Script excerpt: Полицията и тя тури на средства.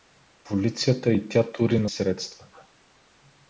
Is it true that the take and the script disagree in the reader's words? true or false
false